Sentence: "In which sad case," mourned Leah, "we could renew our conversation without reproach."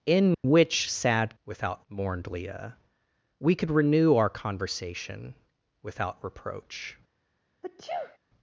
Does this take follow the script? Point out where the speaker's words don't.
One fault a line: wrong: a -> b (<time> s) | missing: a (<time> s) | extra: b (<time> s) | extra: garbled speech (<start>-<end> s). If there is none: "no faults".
wrong: case -> without (1.4 s)